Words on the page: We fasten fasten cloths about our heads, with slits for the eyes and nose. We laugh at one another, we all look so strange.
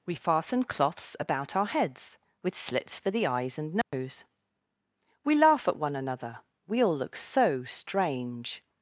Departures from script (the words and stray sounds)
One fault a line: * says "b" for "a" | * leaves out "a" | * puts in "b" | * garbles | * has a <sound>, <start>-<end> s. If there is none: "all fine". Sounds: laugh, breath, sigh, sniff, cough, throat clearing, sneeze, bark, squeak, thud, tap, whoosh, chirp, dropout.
* leaves out "fasten"
* has a dropout, 3.8-3.9 s